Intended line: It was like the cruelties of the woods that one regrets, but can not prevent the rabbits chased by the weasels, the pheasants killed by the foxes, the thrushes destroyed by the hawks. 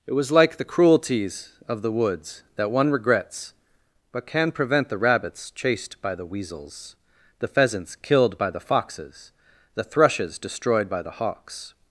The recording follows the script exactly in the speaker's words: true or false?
false